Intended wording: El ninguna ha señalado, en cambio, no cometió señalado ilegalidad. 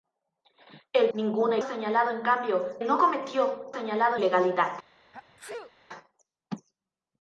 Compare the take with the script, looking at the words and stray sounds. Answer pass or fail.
fail